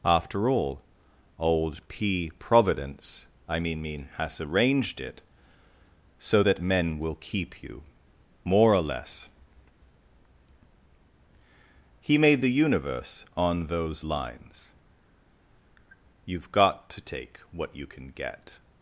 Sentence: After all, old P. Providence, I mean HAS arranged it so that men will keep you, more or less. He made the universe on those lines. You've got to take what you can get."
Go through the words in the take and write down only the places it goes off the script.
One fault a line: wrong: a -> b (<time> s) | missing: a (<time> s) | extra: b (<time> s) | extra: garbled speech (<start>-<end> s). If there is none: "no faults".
extra: mean (3.8 s)